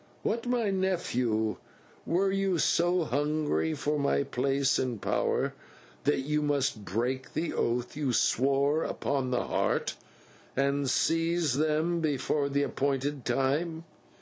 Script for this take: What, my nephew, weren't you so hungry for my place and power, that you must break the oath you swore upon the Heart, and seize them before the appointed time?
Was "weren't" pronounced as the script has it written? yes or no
no